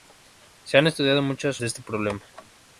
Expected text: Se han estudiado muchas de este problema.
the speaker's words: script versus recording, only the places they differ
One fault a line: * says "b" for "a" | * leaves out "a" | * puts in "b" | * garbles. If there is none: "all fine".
all fine